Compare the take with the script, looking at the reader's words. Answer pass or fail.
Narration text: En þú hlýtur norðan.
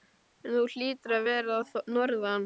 fail